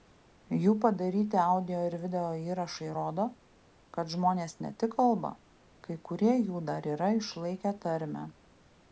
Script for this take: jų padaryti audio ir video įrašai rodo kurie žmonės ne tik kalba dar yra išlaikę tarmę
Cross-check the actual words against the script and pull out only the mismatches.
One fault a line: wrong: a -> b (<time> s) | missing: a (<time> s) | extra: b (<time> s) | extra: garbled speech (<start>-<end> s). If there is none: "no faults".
wrong: kurie -> kad (4.0 s)
extra: kai kurie jų (5.9 s)